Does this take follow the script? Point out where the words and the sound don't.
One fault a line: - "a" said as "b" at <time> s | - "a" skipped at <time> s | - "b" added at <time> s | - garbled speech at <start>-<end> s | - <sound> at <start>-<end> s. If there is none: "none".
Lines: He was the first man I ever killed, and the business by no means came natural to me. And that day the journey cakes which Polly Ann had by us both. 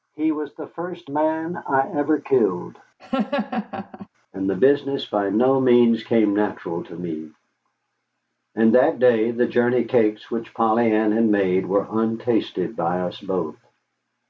- laugh at 3.0-4.1 s
- "made were untasted" added at 11.3 s